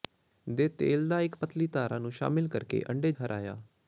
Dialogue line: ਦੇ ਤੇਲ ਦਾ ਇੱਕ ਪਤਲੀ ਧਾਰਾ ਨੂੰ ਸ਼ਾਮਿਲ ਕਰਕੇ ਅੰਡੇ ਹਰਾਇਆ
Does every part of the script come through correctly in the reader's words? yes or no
yes